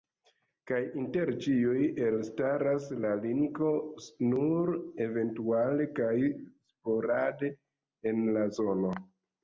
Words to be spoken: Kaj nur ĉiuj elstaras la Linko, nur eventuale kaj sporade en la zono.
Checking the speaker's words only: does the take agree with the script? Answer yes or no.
no